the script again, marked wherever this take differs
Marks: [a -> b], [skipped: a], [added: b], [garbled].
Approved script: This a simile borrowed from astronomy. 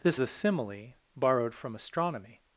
This a simile borrowed from astronomy.